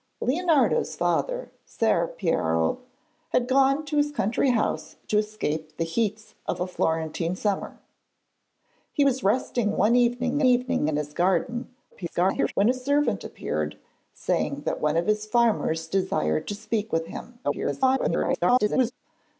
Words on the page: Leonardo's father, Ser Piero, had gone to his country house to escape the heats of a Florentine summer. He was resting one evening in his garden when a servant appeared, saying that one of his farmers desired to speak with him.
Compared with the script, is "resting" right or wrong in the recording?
right